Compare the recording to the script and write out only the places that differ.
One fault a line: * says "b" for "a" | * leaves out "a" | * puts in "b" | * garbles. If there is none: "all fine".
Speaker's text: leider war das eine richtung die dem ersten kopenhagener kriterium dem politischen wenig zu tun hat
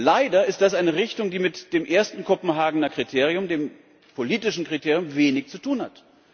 * says "ist" for "war"
* puts in "mit"
* puts in "kriterium"